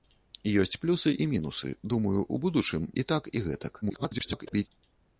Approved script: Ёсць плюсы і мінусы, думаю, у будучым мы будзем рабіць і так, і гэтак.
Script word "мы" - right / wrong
wrong